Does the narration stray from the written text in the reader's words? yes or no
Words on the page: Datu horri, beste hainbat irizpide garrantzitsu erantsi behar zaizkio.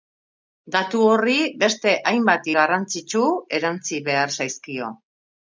yes